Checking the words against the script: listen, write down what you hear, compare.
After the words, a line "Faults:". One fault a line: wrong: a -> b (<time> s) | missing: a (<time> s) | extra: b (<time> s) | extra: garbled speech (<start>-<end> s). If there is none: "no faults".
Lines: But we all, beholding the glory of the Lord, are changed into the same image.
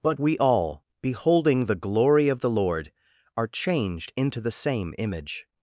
But we all, beholding the glory of the Lord, are changed into the same image.
Faults:
no faults